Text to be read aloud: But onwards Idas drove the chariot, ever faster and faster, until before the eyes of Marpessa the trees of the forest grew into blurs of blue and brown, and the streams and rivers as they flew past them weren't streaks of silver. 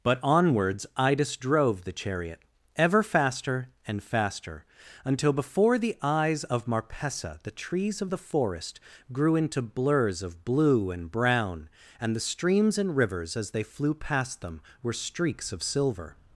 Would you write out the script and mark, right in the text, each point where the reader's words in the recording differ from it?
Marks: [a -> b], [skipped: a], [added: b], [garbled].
But onwards Idas drove the chariot, ever faster and faster, until before the eyes of Marpessa the trees of the forest grew into blurs of blue and brown, and the streams and rivers as they flew past them [weren't -> were] streaks of silver.